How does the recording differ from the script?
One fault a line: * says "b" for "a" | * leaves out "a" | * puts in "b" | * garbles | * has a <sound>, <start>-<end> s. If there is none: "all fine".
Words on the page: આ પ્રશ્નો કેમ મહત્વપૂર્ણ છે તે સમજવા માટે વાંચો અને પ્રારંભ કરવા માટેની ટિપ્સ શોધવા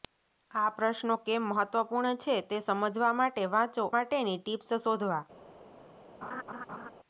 * leaves out "અને પ્રારંભ કરવા"
* has a laugh, 6.2-6.9 s